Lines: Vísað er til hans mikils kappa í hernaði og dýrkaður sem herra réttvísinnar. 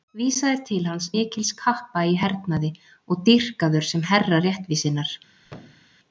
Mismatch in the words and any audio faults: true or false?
true